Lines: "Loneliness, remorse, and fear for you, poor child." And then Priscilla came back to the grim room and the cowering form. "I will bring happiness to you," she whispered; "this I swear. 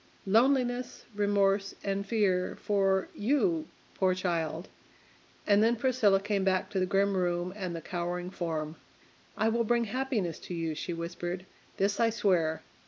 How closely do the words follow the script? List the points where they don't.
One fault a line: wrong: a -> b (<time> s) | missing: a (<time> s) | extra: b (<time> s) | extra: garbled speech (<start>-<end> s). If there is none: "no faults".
no faults